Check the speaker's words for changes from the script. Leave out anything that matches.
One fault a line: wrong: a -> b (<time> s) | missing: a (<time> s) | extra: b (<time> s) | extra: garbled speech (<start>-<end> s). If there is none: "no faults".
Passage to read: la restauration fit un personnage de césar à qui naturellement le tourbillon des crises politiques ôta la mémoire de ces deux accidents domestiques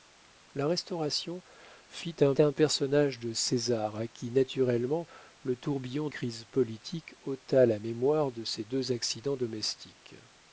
extra: un (2.4 s)
missing: des (6.1 s)